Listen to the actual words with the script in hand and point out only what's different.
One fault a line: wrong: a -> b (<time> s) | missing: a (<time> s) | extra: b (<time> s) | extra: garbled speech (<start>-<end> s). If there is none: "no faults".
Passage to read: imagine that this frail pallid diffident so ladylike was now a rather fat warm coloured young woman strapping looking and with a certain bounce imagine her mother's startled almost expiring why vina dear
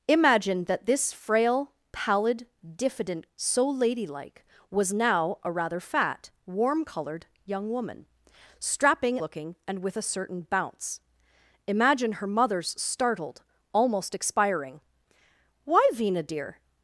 no faults